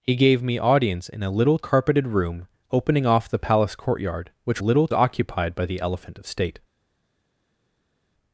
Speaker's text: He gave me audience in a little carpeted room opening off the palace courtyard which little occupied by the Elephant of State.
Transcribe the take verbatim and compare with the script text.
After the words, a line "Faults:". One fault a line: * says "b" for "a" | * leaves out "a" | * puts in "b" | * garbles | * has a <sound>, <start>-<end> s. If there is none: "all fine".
He gave me audience in a little carpeted room opening off the palace courtyard which little occupied by the Elephant of State.
Faults:
all fine